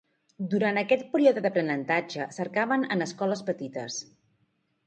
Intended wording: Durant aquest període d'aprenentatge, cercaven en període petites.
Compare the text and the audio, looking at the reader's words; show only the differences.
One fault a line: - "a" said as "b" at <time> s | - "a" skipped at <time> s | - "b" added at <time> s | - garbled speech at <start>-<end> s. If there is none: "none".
- "període" said as "escoles" at 3.1 s